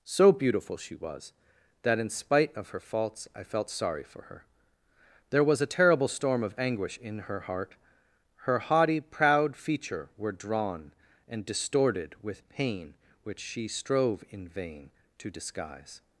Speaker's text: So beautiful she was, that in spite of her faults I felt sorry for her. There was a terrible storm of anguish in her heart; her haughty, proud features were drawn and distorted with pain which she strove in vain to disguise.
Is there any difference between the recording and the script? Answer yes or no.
yes